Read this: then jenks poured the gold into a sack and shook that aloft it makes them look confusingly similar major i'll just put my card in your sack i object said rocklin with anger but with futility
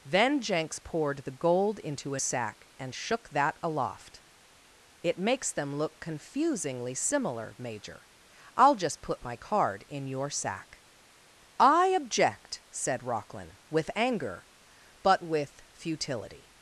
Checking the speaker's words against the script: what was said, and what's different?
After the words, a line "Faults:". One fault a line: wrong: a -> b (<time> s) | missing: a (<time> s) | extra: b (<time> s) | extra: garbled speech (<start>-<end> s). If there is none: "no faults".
then jenks poured the gold into a sack and shook that aloft it makes them look confusingly similar major i'll just put my card in your sack i object said rocklin with anger but with futility
Faults:
no faults